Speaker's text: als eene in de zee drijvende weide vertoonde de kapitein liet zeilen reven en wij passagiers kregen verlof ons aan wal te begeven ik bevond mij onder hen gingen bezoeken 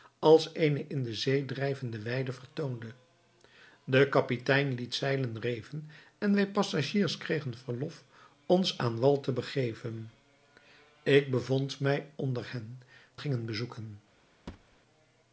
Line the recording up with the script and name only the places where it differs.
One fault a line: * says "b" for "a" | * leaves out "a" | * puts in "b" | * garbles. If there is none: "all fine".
all fine